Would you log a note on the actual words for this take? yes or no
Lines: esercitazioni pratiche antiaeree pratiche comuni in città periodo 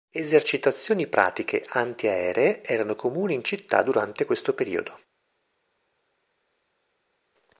yes